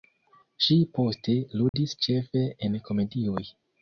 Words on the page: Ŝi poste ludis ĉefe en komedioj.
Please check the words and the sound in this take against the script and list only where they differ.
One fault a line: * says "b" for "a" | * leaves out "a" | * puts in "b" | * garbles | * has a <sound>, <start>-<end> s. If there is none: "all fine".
* has a dropout, 1.7-1.7 s